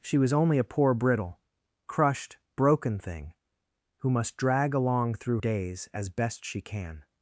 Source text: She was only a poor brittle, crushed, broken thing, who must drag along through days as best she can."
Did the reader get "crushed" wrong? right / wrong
right